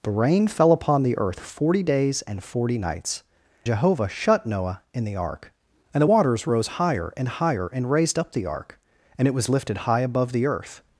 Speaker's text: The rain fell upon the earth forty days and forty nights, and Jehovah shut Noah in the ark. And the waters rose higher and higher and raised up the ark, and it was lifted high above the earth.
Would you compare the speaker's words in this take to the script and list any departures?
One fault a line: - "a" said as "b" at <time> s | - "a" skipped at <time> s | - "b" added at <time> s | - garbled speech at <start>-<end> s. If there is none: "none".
- "and" skipped at 3.2 s